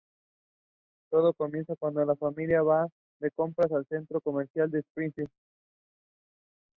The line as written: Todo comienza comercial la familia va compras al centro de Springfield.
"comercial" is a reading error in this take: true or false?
true